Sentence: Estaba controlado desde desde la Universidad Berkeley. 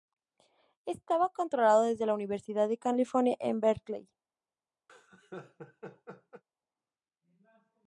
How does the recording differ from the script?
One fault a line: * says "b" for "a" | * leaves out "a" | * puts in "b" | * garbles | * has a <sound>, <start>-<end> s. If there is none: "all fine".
* leaves out "desde"
* puts in "de California en"
* has a laugh, 4.9-6.4 s